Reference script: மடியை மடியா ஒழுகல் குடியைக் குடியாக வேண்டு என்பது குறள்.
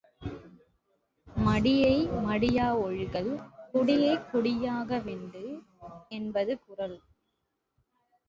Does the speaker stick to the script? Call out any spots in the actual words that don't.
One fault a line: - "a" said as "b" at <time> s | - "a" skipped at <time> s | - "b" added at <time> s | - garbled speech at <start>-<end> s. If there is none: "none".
none